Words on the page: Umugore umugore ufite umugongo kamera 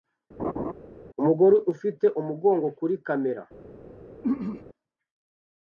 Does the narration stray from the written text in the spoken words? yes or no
yes